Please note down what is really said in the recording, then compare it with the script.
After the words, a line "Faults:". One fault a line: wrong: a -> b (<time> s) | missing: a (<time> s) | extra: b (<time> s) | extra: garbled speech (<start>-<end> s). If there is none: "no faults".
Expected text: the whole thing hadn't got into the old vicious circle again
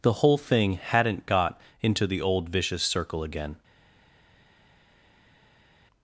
the whole thing hadn't got into the old vicious circle again
Faults:
no faults